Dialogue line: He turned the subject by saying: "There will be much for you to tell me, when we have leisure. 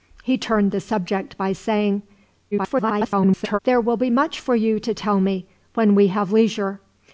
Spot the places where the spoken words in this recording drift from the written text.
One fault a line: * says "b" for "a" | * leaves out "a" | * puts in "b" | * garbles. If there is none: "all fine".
* garbles